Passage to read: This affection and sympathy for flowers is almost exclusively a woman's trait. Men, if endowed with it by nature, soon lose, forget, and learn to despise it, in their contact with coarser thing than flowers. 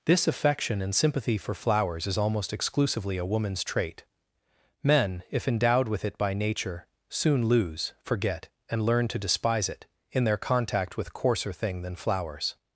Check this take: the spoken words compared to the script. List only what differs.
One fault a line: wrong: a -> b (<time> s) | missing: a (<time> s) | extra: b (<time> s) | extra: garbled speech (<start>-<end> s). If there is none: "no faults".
no faults